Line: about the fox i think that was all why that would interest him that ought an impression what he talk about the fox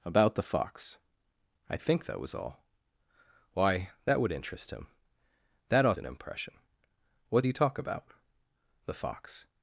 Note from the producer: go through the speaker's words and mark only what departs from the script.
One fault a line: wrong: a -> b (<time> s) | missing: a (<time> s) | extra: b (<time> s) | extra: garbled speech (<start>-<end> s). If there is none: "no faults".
no faults